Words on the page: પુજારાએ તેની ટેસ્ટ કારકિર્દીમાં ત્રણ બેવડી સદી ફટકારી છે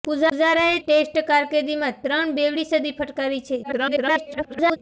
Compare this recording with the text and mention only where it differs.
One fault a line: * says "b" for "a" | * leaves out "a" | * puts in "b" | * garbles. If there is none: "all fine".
* leaves out "તેની"
* garbles